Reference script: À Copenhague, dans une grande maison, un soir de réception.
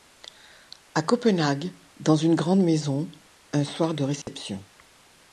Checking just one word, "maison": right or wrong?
right